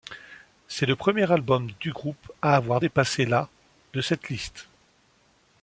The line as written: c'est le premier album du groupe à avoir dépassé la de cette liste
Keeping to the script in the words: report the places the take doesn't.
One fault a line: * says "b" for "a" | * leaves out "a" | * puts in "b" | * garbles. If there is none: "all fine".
all fine